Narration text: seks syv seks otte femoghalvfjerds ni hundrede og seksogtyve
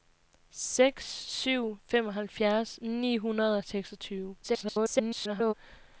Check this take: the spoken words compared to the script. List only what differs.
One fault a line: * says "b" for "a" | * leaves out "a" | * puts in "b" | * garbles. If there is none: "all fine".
* leaves out "seks otte"
* garbles